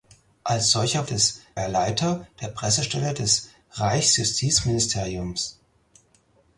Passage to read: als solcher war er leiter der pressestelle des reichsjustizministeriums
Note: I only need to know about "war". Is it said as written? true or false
false